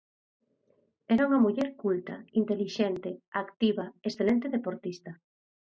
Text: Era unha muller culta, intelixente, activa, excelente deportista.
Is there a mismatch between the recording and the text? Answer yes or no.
no